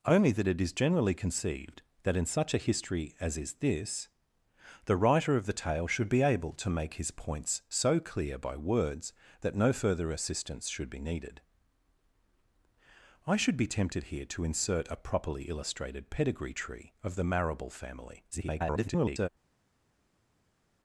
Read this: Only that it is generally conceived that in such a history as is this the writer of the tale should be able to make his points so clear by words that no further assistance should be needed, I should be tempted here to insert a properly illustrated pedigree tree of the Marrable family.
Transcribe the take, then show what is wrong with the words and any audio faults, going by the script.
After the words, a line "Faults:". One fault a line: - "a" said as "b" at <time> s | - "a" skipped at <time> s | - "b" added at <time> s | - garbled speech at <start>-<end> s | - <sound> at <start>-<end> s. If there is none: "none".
Only that it is generally conceived that in such a history as is this the writer of the tale should be able to make his points so clear by words that no further assistance should be needed, I should be tempted here to insert a properly illustrated pedigree tree of the Marrable family. [garbled]
Faults:
- garbled speech at 18.3-19.3 s